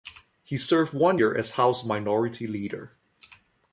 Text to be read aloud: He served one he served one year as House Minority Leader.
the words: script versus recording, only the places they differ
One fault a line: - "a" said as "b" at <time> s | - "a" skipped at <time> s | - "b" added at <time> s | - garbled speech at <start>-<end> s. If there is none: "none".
- "he served one" skipped at 1.2 s